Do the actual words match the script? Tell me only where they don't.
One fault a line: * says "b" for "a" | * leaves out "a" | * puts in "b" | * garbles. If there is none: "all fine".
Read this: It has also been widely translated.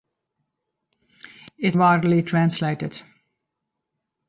* leaves out "has also been"